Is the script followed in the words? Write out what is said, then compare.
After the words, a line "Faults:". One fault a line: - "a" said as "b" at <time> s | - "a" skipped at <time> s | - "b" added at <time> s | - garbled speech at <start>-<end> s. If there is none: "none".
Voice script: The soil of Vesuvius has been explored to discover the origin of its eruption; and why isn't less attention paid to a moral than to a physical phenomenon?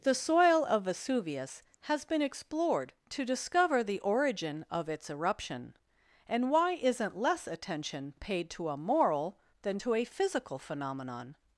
The soil of Vesuvius has been explored to discover the origin of its eruption; and why isn't less attention paid to a moral than to a physical phenomenon?
Faults:
none